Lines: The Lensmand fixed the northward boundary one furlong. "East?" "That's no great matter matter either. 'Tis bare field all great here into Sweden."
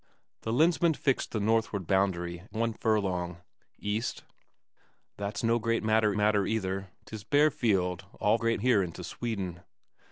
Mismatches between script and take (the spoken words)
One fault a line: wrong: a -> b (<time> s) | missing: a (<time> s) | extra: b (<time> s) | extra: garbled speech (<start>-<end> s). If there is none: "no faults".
no faults